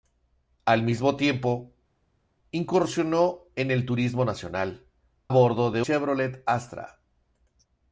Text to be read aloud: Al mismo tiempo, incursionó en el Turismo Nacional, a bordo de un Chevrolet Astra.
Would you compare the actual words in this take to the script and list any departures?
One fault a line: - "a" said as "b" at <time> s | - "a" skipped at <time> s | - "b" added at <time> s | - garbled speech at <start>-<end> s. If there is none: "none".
- "a" skipped at 4.9 s
- "un" skipped at 5.8 s